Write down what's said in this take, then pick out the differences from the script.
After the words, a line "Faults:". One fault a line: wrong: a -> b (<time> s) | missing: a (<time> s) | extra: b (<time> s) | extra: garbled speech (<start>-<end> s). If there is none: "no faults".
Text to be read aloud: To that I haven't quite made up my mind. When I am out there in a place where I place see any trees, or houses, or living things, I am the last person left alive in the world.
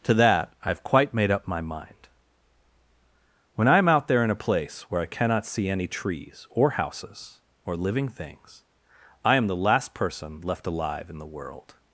To that I have quite made up my mind. When I am out there in a place where I cannot see any trees, or houses, or living things, I am the last person left alive in the world.
Faults:
wrong: haven't -> have (0.7 s)
wrong: place -> cannot (5.1 s)